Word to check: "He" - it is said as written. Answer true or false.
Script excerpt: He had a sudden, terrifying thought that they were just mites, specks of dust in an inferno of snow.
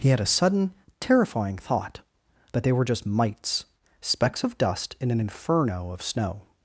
true